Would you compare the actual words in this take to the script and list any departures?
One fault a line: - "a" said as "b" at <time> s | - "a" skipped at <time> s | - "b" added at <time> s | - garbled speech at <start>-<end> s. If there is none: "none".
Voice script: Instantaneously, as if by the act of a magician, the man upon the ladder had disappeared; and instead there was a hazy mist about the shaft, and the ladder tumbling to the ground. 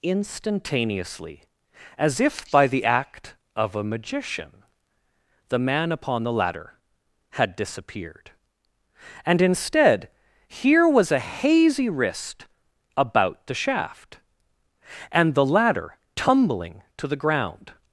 - "there" said as "here" at 10.5 s
- "mist" said as "wrist" at 11.9 s